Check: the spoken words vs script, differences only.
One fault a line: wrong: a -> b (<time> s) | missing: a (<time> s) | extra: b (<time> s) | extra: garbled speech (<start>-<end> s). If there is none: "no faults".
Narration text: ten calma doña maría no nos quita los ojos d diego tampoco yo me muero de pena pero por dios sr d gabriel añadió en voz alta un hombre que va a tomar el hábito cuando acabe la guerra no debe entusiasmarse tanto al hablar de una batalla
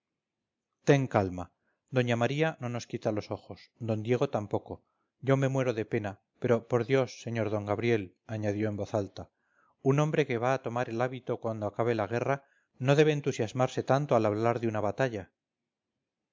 no faults